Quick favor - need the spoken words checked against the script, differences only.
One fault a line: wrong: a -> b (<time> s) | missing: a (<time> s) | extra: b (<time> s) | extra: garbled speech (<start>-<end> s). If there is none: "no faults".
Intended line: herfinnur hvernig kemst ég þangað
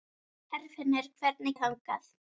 missing: kemst (1.6 s)